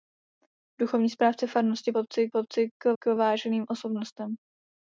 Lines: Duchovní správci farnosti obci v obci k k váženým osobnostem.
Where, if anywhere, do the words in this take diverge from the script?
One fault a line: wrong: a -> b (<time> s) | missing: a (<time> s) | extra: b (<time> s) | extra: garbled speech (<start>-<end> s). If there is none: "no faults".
no faults